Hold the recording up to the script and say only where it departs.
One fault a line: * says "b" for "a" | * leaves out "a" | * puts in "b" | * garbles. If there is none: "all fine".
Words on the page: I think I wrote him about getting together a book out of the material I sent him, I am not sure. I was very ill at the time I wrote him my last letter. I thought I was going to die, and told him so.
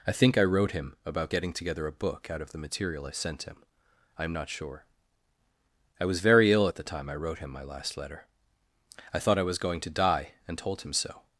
all fine